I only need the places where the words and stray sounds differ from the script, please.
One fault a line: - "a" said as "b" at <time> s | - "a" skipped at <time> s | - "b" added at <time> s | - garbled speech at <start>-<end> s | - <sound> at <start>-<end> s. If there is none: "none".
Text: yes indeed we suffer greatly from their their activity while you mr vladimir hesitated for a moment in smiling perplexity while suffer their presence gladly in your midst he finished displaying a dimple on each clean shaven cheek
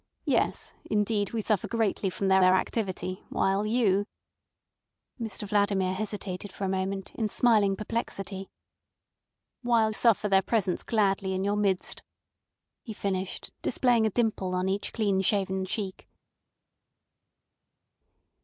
none